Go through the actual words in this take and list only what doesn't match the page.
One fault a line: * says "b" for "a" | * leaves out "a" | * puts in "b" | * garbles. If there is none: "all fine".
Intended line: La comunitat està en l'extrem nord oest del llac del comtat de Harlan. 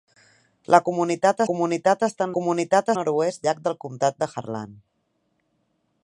* puts in "comunitat"
* says "comunitat" for "l'extrem"
* leaves out "del"